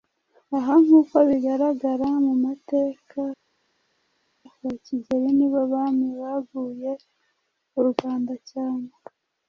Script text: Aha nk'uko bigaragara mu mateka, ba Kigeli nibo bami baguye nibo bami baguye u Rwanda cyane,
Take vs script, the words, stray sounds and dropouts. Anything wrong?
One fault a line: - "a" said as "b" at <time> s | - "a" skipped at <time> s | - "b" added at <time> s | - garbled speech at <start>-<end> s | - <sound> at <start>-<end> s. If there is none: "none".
- "nibo bami baguye" skipped at 6.9 s